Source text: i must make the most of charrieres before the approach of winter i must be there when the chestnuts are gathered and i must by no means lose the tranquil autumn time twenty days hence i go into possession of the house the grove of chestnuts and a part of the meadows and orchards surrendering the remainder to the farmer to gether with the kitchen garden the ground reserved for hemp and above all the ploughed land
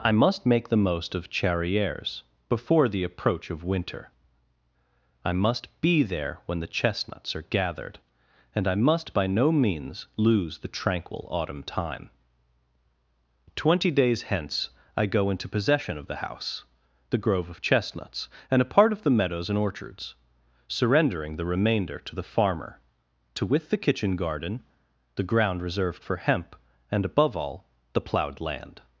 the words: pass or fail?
fail